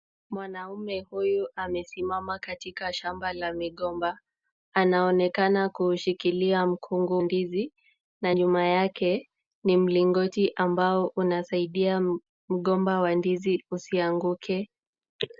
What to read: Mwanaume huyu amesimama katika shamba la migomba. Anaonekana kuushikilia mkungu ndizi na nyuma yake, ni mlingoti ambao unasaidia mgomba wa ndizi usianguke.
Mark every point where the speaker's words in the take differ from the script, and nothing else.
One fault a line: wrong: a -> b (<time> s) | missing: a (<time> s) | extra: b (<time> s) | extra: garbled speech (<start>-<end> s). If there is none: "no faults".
no faults